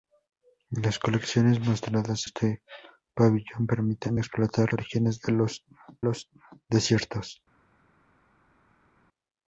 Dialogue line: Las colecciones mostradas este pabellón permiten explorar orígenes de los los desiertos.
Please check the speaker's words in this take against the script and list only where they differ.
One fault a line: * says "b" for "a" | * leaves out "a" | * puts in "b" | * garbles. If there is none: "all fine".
all fine